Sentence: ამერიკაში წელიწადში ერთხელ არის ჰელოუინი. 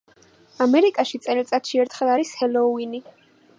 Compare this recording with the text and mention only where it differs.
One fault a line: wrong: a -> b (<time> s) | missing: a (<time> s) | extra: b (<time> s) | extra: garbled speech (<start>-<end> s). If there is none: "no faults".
no faults